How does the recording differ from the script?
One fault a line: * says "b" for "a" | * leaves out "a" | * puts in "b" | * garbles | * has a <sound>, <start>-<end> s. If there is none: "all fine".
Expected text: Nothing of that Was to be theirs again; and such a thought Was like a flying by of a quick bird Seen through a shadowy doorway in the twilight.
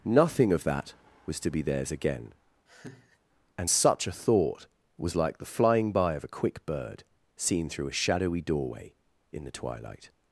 * has a laugh, 2.7-3.2 s
* says "the" for "a"